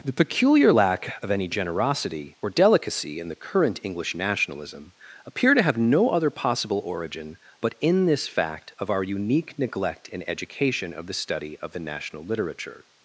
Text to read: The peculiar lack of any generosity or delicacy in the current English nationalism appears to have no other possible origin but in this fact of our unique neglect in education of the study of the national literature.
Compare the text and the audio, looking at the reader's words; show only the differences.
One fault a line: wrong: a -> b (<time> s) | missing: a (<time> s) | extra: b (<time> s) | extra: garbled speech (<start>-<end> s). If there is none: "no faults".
wrong: appears -> appear (5.2 s)